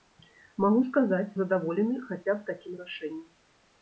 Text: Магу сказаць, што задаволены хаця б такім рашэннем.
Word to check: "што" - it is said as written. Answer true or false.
false